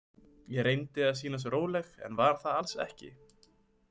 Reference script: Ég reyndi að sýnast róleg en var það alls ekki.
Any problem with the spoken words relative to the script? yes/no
no